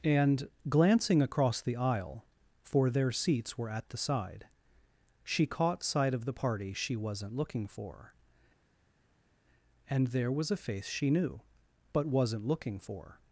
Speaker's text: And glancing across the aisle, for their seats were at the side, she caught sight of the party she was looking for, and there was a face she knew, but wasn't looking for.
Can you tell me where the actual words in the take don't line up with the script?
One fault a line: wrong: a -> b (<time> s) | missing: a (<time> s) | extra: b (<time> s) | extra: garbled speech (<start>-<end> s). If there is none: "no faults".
wrong: was -> wasn't (6.9 s)